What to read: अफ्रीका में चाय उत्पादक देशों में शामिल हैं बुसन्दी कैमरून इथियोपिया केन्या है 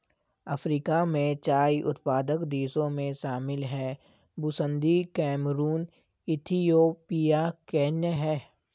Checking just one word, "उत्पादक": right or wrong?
right